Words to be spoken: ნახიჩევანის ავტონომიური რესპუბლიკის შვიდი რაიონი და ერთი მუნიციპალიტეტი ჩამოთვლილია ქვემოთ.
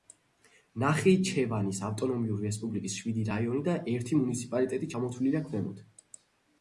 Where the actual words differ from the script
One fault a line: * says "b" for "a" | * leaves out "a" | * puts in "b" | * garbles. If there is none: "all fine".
all fine